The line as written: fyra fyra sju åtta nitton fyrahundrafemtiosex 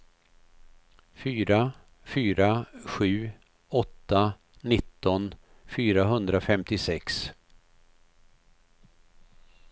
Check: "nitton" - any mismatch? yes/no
no